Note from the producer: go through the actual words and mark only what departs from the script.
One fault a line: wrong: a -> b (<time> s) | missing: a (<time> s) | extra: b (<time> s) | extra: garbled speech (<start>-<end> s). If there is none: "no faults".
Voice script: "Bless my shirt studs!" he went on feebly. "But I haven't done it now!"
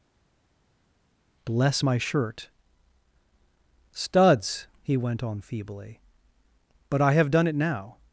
wrong: haven't -> have (7.1 s)